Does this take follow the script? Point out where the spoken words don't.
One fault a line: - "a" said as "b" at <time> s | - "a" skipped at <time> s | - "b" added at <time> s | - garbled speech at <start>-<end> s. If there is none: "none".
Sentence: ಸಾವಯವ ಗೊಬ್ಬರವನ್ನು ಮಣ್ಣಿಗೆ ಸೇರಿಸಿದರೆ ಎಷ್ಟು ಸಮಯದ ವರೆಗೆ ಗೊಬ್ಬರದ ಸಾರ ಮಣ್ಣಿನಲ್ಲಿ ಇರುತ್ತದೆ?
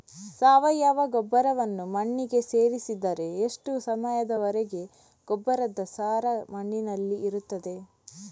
none